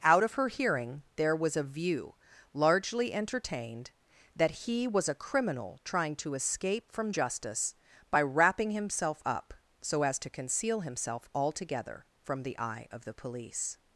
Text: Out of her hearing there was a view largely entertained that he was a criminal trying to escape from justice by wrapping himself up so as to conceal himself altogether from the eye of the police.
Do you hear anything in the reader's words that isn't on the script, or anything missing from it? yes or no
no